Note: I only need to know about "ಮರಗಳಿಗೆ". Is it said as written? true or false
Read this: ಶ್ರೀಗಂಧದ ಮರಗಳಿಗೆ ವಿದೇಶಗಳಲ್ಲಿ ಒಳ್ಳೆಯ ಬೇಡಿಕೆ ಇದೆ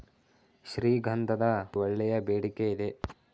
false